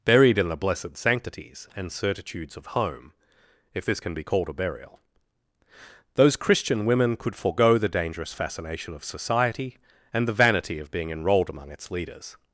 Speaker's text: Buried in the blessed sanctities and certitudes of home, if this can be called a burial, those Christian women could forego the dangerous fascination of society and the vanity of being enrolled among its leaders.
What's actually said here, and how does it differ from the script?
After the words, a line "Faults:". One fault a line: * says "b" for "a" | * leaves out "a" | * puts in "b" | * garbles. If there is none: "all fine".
Buried in the blessed sanctities and certitudes of home, if this can be called a burial, those Christian women could forego the dangerous fascination of society and the vanity of being enrolled among its leaders.
Faults:
all fine